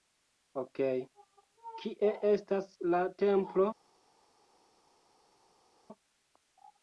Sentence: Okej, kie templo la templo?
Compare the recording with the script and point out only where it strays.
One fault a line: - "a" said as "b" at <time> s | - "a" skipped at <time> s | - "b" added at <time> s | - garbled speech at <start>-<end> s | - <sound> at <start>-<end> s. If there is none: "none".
- "templo" said as "estas" at 2.3 s